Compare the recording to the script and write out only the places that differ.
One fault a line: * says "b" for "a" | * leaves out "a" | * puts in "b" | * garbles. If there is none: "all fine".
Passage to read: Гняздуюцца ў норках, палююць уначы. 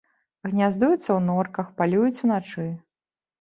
all fine